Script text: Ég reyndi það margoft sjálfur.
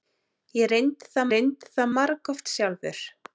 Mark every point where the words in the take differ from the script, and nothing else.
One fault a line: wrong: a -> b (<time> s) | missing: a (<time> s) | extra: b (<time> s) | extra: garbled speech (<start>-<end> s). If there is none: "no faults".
extra: reyndi það (1.3 s)